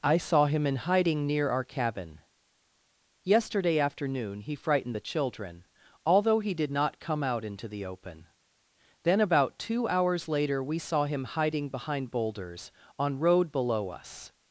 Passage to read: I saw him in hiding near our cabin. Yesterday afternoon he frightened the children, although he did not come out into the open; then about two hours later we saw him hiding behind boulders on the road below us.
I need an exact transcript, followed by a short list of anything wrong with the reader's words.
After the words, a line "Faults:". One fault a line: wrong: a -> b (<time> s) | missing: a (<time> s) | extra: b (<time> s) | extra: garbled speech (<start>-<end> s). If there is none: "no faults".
I saw him in hiding near our cabin. Yesterday afternoon he frightened the children, although he did not come out into the open; then about two hours later we saw him hiding behind boulders on road below us.
Faults:
missing: the (13.2 s)